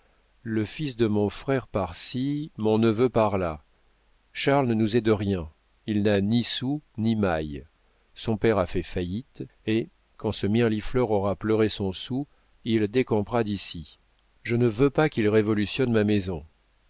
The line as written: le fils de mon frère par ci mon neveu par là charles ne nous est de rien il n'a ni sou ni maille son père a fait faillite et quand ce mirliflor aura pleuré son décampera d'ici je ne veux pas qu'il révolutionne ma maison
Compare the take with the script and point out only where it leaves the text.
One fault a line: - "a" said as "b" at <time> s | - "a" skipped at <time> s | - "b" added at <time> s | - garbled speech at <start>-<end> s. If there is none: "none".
- "soûl il" added at 11.9 s